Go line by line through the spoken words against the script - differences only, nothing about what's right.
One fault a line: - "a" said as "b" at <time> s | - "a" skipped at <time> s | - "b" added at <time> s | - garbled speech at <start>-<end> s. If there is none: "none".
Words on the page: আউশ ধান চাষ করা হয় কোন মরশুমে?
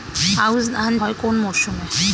- "চাষ করা" skipped at 0.9 s